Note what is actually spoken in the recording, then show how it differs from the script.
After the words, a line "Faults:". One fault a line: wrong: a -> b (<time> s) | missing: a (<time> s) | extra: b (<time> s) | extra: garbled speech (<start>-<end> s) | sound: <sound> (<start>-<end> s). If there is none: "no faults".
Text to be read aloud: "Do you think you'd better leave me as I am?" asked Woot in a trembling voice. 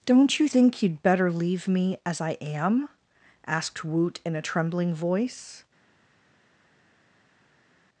"Don't you think you'd better leave me as I am?" asked Woot in a trembling voice.
Faults:
wrong: Do -> Don't (0.1 s)